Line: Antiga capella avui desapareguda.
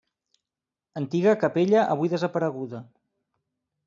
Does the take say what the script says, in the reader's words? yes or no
yes